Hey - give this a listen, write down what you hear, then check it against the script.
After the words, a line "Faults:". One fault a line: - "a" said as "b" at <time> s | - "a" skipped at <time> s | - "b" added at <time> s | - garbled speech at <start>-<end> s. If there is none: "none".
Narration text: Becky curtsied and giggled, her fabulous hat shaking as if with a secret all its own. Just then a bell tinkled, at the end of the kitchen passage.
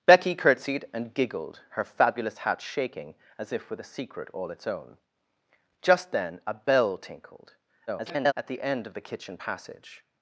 Becky curtsied and giggled, her fabulous hat shaking as if with a secret all its own. Just then a bell tinkled, [garbled] at the end of the kitchen passage.
Faults:
- garbled speech at 7.9-8.3 s